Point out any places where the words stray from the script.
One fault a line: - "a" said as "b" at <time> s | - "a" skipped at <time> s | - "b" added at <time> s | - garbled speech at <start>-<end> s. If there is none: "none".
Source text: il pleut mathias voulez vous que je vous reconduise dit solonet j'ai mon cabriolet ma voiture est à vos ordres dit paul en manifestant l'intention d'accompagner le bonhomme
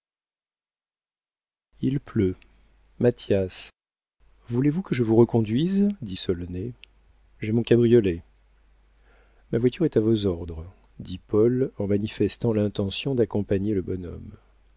none